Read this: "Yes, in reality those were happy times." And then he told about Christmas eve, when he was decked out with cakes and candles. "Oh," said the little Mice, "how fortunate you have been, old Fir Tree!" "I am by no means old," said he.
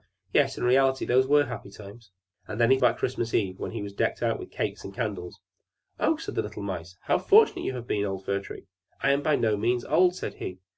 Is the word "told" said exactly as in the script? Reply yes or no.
no